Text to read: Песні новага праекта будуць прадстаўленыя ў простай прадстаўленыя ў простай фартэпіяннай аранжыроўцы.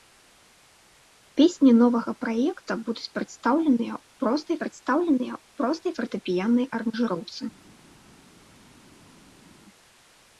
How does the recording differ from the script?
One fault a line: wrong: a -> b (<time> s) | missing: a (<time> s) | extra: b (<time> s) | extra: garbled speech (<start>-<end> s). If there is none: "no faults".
no faults